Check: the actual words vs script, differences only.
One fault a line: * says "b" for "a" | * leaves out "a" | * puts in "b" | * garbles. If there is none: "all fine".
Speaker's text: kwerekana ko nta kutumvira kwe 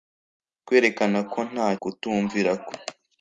all fine